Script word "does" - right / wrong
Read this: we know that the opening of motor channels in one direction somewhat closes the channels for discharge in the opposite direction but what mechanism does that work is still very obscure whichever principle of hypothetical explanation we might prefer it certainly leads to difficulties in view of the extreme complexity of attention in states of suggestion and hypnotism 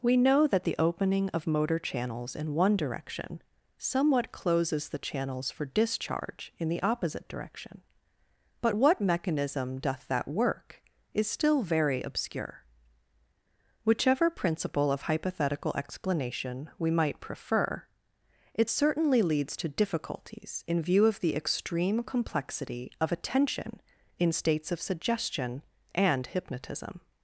wrong